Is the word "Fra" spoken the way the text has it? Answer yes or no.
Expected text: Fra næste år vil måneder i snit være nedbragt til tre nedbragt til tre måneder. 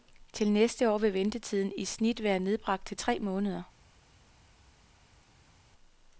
no